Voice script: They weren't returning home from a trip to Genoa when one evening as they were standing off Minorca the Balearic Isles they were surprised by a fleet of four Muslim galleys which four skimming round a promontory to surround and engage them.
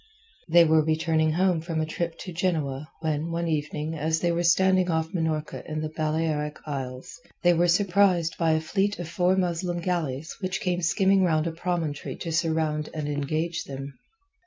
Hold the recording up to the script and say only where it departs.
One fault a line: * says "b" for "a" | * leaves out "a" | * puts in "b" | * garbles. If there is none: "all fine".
* says "were" for "weren't"
* puts in "in"
* says "came" for "four"